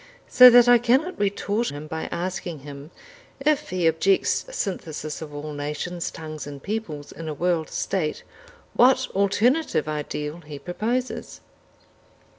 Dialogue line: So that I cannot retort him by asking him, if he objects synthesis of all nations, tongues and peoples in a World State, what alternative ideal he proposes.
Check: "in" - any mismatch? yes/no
no